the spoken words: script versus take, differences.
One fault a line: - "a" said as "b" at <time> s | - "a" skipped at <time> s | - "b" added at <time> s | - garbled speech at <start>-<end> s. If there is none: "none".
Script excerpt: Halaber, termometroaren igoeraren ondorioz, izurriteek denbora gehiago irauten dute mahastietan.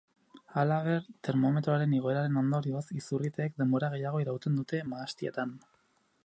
none